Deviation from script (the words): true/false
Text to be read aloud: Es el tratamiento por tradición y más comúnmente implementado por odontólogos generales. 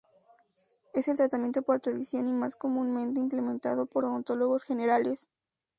false